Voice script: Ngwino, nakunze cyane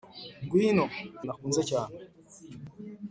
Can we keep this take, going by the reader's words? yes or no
yes